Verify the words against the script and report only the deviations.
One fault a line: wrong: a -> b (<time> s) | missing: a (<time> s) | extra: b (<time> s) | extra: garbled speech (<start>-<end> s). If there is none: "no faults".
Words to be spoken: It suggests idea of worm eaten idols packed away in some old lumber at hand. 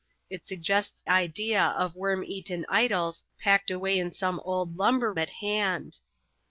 no faults